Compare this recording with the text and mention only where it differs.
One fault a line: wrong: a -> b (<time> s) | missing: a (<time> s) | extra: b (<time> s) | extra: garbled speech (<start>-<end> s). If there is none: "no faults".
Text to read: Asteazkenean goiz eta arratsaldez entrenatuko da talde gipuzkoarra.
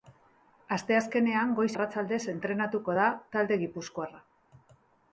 missing: eta (1.7 s)